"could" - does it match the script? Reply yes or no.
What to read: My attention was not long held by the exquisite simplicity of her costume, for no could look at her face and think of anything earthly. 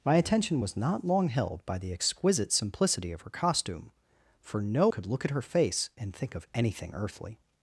yes